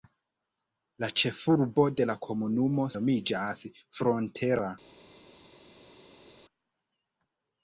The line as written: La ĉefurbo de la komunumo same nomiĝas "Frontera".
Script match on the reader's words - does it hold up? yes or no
no